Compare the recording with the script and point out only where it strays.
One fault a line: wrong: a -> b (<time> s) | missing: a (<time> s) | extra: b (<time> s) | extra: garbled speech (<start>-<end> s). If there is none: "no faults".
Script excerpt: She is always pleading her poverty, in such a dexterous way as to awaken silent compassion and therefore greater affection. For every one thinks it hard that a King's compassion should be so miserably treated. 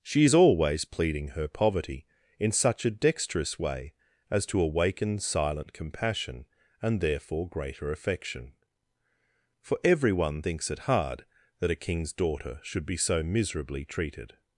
wrong: compassion -> daughter (12.1 s)